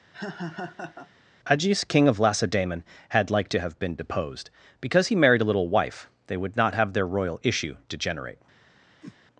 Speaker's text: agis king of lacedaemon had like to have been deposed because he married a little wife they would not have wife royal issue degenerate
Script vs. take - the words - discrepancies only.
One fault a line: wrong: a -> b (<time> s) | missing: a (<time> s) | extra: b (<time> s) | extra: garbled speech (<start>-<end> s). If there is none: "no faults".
wrong: wife -> their (6.9 s)